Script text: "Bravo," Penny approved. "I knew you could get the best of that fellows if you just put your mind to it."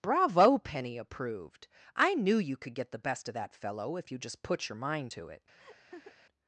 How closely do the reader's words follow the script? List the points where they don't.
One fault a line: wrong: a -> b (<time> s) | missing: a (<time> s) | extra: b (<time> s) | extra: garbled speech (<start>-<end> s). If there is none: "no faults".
wrong: fellows -> fellow (3.5 s)